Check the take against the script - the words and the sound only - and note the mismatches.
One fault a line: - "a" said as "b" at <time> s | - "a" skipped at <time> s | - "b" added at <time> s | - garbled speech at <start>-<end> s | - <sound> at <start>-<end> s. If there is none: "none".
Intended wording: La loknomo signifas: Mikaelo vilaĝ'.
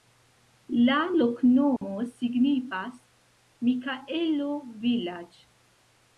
- dropout at 1.8-1.8 s